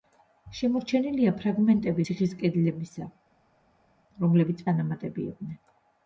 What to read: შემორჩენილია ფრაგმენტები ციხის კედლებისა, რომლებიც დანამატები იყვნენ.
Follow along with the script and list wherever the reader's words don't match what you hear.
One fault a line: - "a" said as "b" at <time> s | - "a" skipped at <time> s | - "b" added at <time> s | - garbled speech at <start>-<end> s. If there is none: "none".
none